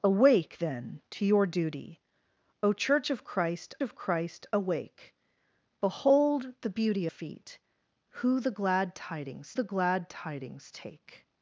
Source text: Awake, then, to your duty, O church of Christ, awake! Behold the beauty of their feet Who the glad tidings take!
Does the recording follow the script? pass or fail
fail